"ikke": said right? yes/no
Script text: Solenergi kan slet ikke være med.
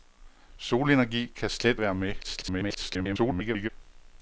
no